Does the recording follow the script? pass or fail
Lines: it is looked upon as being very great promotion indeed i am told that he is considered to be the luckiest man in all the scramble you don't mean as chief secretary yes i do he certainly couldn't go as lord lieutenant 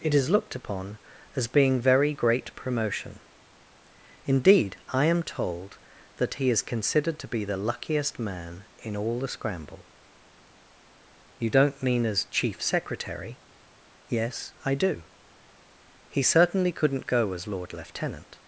pass